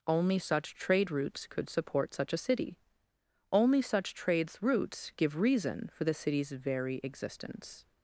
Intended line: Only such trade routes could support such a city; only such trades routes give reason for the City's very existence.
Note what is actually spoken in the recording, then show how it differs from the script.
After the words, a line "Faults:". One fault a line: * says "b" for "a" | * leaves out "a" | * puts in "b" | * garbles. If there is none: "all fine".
Only such trade routes could support such a city; only such trades routes give reason for the City's very existence.
Faults:
all fine